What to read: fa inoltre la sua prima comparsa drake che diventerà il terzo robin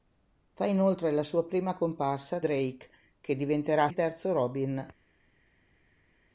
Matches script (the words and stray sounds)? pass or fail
pass